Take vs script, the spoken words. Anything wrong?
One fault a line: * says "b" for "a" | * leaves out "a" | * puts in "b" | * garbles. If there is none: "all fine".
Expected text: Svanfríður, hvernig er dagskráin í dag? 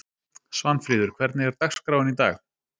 all fine